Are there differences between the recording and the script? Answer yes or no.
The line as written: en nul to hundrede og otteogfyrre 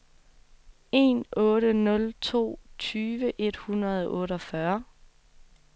yes